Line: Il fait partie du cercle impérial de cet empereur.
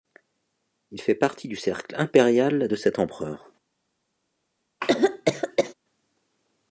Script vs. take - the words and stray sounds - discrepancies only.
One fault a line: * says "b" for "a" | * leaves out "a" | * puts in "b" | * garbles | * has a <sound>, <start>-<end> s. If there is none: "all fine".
* has a cough, 4.8-5.7 s